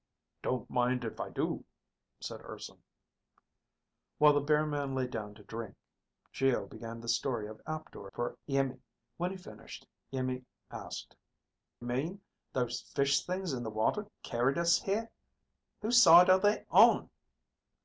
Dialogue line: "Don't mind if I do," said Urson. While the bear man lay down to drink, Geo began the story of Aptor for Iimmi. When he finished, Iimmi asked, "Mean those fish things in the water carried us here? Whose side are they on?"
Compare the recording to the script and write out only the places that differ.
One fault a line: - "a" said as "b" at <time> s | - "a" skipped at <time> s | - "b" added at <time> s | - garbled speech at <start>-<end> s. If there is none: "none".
none